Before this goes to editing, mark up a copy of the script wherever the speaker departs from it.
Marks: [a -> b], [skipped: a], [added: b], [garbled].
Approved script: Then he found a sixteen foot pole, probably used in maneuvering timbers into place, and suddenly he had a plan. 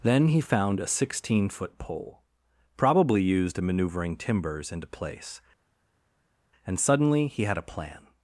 Then he found a sixteen foot pole, probably used in maneuvering timbers into place, and suddenly he had a plan.